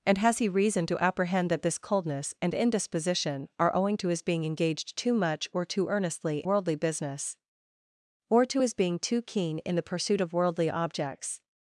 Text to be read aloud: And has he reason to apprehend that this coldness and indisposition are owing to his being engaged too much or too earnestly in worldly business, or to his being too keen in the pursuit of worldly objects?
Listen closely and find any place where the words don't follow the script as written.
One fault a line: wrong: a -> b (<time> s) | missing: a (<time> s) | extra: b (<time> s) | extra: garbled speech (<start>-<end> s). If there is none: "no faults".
missing: in (6.4 s)